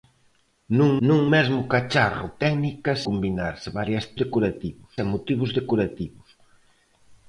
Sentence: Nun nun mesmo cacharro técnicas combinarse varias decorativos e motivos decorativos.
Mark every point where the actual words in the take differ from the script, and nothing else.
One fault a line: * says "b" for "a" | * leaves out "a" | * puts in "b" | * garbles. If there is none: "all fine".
all fine